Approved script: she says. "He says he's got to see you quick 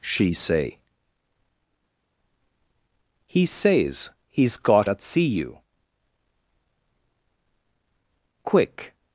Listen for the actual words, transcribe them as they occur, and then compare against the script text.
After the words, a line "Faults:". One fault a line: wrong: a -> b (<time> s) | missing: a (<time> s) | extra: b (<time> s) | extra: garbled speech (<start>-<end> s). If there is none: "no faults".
she say. "He says he's got at see you quick
Faults:
wrong: says -> say (0.3 s)
wrong: to -> at (4.9 s)